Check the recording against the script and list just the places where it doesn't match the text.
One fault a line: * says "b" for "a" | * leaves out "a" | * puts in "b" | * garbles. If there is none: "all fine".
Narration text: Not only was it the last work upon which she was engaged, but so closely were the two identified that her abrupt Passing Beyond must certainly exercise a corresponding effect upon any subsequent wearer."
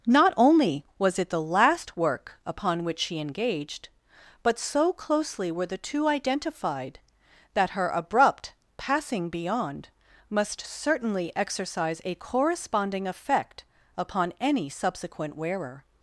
* leaves out "was"